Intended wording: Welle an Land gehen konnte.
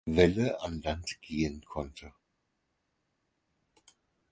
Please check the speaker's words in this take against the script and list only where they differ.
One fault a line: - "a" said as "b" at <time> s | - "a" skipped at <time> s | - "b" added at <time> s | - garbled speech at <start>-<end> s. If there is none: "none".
none